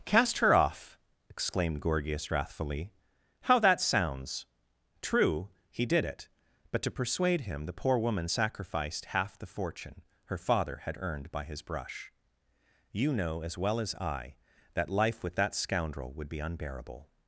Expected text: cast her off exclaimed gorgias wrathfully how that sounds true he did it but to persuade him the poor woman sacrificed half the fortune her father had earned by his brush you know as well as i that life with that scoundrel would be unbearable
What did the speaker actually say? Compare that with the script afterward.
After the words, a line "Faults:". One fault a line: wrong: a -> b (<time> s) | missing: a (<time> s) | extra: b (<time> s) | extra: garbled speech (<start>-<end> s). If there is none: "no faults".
cast her off exclaimed gorgias wrathfully how that sounds true he did it but to persuade him the poor woman sacrificed half the fortune her father had earned by his brush you know as well as i that life with that scoundrel would be unbearable
Faults:
no faults